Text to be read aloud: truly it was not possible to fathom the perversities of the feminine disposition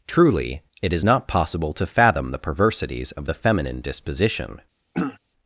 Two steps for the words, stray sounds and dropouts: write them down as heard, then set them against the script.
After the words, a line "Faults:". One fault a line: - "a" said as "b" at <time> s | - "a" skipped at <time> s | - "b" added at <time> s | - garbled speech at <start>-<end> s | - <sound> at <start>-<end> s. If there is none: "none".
truly it is not possible to fathom the perversities of the feminine disposition
Faults:
- "was" said as "is" at 0.9 s
- throat clearing at 4.9-5.2 s